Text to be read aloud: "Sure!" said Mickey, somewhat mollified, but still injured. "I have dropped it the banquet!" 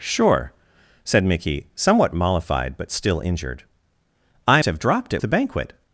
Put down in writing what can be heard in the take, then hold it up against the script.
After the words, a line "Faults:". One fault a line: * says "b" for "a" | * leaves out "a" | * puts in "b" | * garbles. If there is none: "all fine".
"Sure!" said Mickey, somewhat mollified, but still injured. "I have dropped it the banquet!"
Faults:
all fine